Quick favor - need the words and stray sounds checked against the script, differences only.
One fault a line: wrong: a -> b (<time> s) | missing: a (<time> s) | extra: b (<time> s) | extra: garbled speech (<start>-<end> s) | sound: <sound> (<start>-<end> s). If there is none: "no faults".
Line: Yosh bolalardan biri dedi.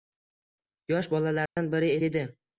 sound: dropout (1.5-1.6 s)